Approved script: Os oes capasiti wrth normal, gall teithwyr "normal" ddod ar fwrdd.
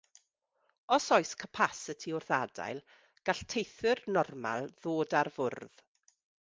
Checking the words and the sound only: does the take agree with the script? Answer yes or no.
no